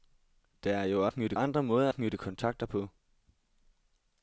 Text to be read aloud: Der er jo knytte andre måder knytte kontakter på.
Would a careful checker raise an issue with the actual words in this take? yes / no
no